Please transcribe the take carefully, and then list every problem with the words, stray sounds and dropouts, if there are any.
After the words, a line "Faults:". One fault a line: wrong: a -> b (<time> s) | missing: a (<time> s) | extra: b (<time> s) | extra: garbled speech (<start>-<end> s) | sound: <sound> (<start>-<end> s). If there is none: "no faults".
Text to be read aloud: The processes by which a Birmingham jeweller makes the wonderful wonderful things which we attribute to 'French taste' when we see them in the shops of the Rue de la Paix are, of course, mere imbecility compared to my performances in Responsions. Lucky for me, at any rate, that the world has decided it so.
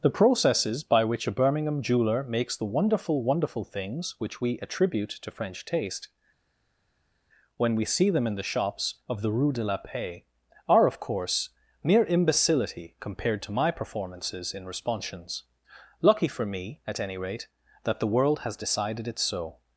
The processes by which a Birmingham jeweller makes the wonderful wonderful things which we attribute to 'French taste' when we see them in the shops of the Rue de la Paix are, of course, mere imbecility compared to my performances in Responsions. Lucky for me, at any rate, that the world has decided it so.
Faults:
no faults